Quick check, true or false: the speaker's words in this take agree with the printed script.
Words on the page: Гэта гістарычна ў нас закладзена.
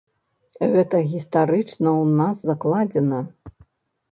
true